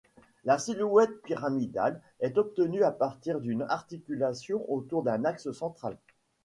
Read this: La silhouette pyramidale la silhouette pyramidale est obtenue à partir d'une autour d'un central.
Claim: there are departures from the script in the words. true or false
true